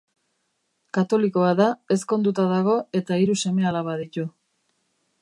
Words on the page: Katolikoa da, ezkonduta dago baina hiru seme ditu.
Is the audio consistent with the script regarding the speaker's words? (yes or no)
no